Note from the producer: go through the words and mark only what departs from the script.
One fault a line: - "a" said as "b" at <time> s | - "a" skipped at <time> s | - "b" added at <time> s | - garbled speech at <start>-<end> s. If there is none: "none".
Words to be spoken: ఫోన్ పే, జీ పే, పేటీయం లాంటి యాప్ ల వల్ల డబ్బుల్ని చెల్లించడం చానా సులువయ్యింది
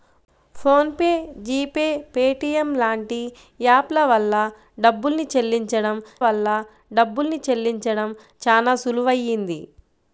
- "వల్ల డబ్బుల్ని చెల్లించడం" added at 6.2 s